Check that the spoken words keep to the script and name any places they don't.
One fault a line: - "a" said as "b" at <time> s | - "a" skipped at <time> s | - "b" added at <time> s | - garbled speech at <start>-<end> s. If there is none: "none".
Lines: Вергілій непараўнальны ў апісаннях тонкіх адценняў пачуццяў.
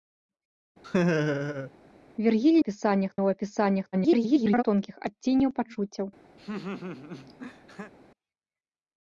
- "непараўнальны" said as "апісаннях" at 2.6 s
- garbled speech at 3.9-4.6 s